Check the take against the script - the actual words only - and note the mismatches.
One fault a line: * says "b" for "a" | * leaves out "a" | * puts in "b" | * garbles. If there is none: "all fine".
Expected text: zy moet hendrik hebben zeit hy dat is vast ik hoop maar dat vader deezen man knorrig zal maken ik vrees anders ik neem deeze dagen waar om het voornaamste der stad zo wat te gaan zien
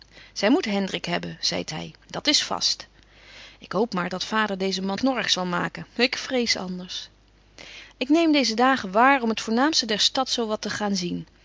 all fine